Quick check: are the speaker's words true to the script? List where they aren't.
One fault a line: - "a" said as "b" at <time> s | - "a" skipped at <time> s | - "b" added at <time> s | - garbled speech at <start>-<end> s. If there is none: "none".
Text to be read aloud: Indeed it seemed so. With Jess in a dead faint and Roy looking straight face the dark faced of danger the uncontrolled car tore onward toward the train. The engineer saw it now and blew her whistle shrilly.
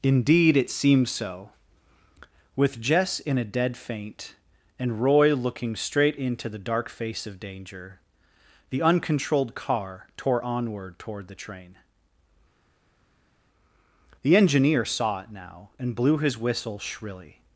- "face" said as "into" at 6.2 s
- "faced" said as "face" at 6.9 s
- "her" said as "his" at 16.2 s